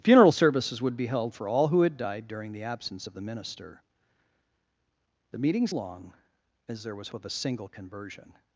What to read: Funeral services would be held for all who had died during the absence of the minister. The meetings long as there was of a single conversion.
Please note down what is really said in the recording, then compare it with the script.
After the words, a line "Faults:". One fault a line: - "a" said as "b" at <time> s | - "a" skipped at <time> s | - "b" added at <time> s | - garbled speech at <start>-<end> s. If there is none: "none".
Funeral services would be held for all who had died during the absence of the minister. The meetings long as there was of a single conversion.
Faults:
none